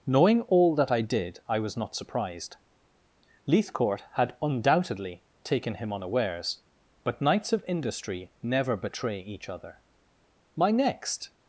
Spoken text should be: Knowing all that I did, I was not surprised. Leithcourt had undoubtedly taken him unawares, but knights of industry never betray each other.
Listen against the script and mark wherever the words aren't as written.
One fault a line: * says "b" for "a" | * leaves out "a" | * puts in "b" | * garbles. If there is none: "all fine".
* puts in "My next"